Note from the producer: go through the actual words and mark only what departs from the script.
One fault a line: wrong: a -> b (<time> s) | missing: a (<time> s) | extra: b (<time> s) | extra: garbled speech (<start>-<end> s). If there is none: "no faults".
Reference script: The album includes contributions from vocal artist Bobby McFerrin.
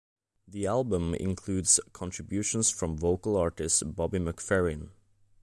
no faults